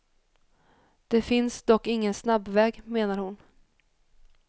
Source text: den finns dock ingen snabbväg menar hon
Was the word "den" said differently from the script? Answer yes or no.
yes